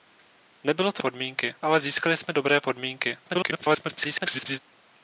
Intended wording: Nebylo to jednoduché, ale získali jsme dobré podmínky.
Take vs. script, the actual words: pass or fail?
fail